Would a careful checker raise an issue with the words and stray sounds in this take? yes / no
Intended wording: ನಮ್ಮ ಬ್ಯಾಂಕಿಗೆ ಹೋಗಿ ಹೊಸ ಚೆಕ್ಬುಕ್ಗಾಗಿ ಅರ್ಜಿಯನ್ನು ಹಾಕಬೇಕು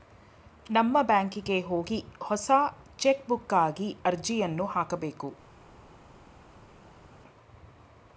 no